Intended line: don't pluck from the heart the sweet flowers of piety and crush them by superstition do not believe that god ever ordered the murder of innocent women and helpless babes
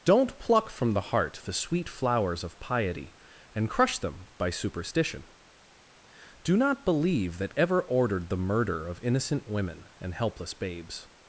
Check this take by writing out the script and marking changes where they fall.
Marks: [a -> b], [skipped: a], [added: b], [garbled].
don't pluck from the heart the sweet flowers of piety and crush them by superstition do not believe that [skipped: god] ever ordered the murder of innocent women and helpless babes